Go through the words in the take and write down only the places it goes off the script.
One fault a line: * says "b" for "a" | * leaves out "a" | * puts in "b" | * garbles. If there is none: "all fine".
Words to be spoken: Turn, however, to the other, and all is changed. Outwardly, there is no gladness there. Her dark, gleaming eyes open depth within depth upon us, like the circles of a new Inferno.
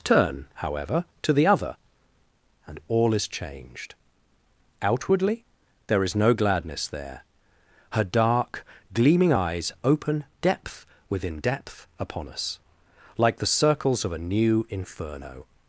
all fine